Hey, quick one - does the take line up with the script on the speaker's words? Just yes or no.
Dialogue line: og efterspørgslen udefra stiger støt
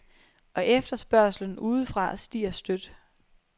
yes